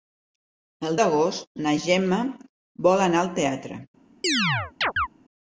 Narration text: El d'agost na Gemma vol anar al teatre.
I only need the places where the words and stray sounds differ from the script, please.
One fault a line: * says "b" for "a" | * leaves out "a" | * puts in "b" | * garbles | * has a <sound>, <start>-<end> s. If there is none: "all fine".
* has a chirp, 4.2-5.1 s